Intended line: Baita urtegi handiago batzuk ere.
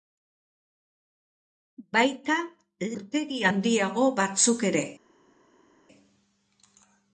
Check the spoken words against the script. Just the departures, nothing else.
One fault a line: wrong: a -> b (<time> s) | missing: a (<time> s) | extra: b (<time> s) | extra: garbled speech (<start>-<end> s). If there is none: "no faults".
no faults